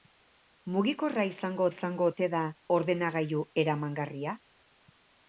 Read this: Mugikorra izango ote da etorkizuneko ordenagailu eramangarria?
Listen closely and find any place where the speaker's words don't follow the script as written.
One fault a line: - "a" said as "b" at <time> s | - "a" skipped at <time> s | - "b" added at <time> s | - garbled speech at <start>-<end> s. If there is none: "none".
- "izango" added at 1.7 s
- "etorkizuneko" skipped at 2.4 s